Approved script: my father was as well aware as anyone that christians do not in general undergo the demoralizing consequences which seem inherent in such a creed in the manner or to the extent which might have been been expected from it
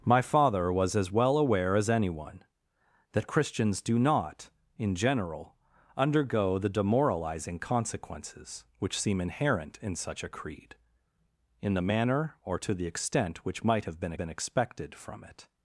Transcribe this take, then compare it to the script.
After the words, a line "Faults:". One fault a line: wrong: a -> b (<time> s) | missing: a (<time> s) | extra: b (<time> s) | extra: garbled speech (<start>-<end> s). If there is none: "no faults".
my father was as well aware as anyone that christians do not in general undergo the demoralizing consequences which seem inherent in such a creed in the manner or to the extent which might have been been expected from it
Faults:
no faults